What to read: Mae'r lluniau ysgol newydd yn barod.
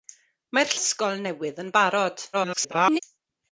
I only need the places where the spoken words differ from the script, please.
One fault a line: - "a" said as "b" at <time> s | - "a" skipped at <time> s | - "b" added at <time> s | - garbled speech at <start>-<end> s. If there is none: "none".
- "lluniau" skipped at 0.7 s
- garbled speech at 2.3-3.0 s